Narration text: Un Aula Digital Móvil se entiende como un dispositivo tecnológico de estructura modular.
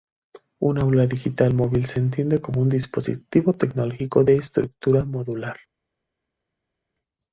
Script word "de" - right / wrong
right